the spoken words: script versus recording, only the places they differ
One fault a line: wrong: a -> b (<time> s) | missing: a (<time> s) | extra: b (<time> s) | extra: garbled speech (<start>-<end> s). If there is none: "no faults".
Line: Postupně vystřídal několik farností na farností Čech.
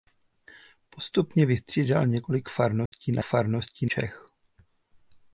no faults